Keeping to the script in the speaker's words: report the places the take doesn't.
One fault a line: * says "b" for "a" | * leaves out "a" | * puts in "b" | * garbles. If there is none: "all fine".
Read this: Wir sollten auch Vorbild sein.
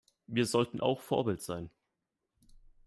all fine